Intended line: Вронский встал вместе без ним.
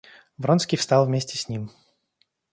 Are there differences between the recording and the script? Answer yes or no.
yes